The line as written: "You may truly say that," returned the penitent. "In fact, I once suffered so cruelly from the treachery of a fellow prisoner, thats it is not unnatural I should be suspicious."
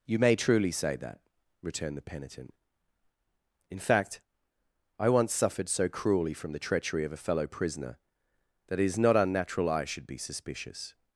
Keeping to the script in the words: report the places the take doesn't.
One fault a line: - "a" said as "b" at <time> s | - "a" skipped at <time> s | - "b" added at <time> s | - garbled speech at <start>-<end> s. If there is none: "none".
- "thats" said as "that" at 8.7 s